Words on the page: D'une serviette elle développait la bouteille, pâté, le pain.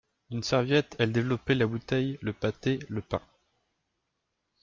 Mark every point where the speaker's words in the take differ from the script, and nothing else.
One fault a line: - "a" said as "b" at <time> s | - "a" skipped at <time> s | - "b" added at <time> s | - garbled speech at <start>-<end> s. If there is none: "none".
- "le" added at 2.2 s